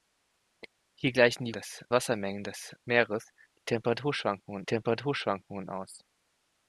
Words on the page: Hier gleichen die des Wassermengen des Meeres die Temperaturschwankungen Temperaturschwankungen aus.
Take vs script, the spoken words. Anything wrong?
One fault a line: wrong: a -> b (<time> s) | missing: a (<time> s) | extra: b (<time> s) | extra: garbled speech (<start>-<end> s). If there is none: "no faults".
no faults